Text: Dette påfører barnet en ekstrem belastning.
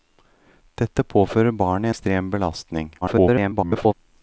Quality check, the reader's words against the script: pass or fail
fail